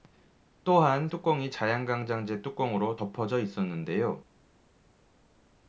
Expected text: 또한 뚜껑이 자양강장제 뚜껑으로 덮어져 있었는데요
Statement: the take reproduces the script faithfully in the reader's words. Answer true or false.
true